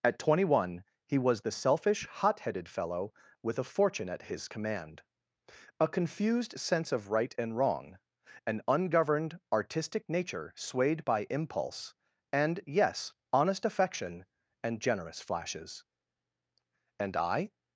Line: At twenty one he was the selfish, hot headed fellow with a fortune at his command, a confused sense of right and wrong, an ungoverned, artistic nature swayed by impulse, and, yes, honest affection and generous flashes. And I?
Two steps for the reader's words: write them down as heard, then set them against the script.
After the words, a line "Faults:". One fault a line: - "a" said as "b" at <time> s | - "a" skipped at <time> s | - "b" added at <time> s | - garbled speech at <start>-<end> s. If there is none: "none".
At twenty one he was the selfish, hot headed fellow with a fortune at his command, a confused sense of right and wrong, an ungoverned, artistic nature swayed by impulse, and, yes, honest affection and generous flashes. And I?
Faults:
none